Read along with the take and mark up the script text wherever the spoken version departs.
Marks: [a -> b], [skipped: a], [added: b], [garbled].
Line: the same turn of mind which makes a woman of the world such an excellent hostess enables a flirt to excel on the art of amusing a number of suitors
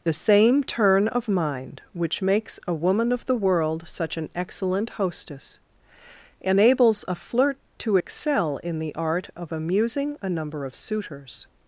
the same turn of mind which makes a woman of the world such an excellent hostess enables a flirt to excel [on -> in] the art of amusing a number of suitors